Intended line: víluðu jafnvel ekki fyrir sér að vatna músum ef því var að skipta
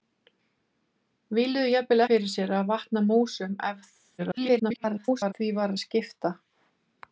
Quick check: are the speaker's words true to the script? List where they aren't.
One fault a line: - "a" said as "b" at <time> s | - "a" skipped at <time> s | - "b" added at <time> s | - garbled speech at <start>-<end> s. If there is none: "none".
- "ekki" skipped at 2.0 s
- garbled speech at 4.2-5.3 s